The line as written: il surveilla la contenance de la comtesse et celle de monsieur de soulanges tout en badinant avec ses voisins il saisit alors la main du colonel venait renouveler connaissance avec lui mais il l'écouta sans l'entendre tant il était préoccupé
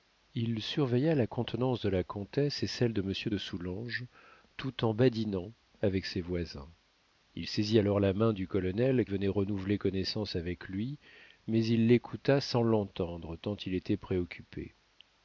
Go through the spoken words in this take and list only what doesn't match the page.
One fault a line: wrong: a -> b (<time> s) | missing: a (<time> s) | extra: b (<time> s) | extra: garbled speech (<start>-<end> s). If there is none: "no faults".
no faults